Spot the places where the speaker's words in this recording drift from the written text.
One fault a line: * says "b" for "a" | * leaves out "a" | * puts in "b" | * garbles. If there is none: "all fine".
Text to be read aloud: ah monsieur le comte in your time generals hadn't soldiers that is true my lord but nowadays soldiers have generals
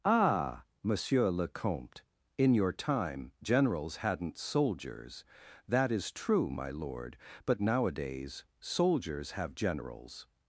all fine